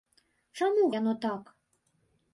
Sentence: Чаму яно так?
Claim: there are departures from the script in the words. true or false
false